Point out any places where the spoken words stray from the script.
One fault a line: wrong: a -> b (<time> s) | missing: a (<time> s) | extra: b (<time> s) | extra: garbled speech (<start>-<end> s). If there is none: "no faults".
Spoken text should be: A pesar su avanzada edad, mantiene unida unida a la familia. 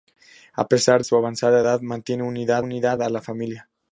no faults